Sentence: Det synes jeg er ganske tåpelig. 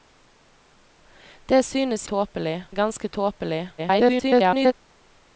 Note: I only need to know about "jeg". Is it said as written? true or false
false